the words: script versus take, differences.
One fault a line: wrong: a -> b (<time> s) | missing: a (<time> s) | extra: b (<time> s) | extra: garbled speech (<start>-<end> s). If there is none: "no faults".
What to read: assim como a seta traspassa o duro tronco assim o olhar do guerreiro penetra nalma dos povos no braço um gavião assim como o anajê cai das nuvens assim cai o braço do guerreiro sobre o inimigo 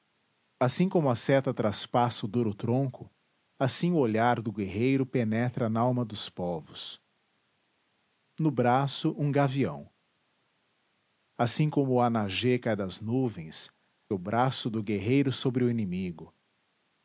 missing: assim cai (13.7 s)